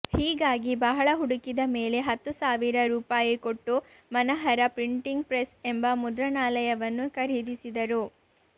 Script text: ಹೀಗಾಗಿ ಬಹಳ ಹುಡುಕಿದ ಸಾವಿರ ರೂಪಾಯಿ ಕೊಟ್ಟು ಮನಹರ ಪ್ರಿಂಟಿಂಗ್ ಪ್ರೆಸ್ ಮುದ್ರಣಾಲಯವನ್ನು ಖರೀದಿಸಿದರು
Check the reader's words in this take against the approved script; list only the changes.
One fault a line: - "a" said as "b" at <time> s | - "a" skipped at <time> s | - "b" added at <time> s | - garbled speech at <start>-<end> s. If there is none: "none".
- "ಮೇಲೆ ಹತ್ತು" added at 1.7 s
- "ಎಂಬ" added at 5.7 s